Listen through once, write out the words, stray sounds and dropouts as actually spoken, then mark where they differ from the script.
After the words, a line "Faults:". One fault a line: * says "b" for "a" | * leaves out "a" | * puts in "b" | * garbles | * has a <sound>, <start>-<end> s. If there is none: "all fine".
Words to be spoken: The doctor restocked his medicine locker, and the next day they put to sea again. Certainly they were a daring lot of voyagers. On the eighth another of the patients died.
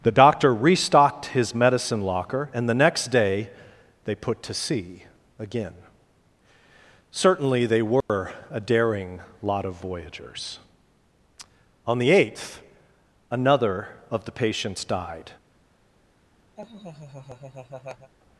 The doctor restocked his medicine locker, and the next day they put to sea again. Certainly they were a daring lot of voyagers. On the eighth another of the patients died.
Faults:
* has a dropout, 8.0-8.1 s
* has a laugh, 16.6-18.1 s